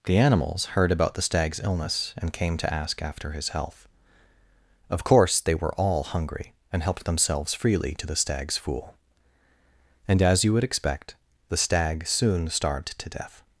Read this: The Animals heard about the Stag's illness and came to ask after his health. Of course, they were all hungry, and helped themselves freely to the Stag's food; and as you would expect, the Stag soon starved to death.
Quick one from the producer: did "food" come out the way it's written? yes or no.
no